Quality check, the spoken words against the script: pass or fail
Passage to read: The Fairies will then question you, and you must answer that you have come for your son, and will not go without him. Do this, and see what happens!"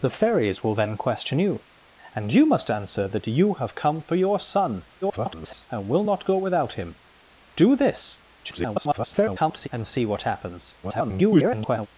fail